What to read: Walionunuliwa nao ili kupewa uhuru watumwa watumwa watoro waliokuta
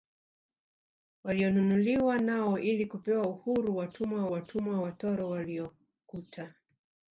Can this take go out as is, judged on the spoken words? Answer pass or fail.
pass